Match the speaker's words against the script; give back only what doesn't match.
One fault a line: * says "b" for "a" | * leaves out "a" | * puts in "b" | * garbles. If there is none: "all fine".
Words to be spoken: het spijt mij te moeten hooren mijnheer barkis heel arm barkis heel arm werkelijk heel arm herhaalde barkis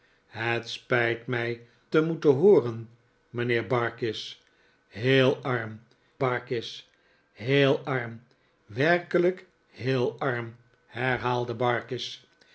all fine